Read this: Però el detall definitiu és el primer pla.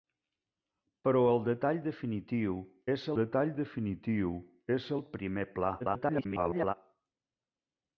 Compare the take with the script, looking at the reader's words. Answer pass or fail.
fail